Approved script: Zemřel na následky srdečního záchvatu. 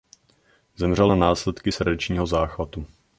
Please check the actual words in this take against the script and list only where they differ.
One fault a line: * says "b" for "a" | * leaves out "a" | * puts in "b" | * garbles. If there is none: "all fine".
all fine